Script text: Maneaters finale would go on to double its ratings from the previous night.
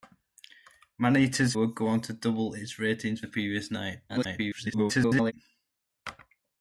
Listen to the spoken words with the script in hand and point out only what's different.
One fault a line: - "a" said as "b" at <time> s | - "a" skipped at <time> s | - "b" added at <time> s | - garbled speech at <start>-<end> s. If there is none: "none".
- "finale" skipped at 1.5 s
- "from" skipped at 3.2 s
- garbled speech at 4.1-5.3 s